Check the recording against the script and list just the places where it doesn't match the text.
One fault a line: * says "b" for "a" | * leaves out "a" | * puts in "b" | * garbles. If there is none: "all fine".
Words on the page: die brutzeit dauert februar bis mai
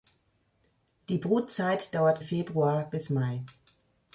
all fine